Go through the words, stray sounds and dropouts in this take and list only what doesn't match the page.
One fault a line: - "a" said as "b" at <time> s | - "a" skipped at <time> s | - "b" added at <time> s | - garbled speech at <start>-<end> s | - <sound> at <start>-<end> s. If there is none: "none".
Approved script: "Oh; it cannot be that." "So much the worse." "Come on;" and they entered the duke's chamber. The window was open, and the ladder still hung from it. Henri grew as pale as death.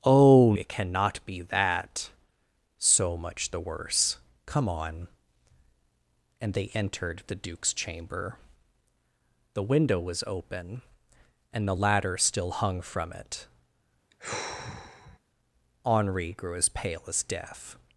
- sigh at 14.1-15.2 s